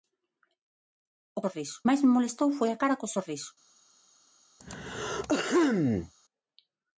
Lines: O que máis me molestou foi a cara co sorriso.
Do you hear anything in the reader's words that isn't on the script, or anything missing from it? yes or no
yes